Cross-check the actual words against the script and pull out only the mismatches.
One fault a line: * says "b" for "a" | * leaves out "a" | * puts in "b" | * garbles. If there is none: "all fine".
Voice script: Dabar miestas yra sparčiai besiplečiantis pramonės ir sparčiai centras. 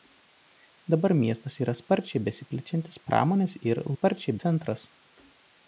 all fine